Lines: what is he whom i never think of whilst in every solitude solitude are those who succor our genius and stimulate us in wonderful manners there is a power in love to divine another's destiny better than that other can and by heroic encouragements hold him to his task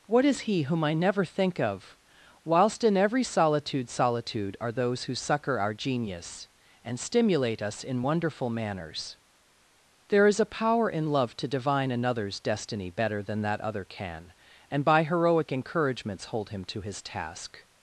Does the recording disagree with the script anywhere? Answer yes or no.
no